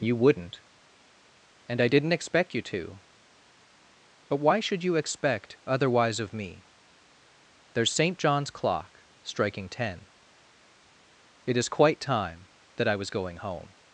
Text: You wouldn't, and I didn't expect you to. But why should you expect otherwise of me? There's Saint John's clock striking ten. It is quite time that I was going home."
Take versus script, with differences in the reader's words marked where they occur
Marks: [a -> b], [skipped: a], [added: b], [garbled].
You wouldn't, and I didn't expect you to. But why should you expect otherwise of me? There's Saint John's clock striking ten. It is quite time that I was going home."